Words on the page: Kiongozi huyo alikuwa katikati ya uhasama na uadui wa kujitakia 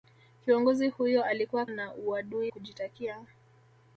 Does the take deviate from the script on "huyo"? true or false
false